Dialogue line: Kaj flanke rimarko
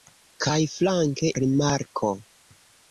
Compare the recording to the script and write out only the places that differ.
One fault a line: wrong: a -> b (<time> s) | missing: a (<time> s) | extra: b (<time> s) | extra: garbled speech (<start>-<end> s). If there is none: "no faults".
no faults